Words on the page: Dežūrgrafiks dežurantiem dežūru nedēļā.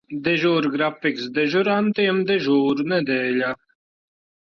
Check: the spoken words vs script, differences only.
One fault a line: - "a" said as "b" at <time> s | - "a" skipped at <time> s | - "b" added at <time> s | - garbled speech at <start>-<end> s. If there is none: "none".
none